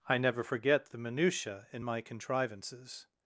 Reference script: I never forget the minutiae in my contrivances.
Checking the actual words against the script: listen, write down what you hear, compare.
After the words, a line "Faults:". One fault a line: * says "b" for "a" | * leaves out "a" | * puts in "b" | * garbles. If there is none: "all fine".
I never forget the minutiae in my contrivances.
Faults:
all fine